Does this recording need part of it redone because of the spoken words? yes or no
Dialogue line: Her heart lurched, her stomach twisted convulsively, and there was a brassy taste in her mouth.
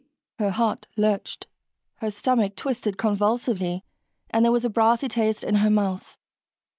no